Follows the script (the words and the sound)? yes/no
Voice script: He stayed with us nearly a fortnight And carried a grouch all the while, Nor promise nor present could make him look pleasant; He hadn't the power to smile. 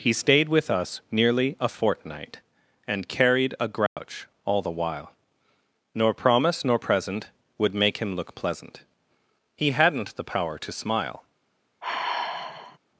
no